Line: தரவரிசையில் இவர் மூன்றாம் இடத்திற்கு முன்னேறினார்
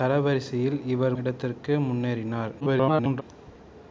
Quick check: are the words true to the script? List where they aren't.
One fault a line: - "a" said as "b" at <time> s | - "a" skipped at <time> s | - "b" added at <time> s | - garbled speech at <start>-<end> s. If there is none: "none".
- "மூன்றாம்" skipped at 1.1 s
- garbled speech at 2.6-3.2 s